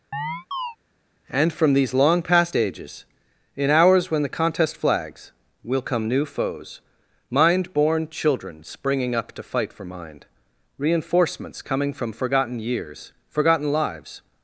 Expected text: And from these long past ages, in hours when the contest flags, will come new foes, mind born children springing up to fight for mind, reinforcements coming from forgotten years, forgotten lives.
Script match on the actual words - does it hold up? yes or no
yes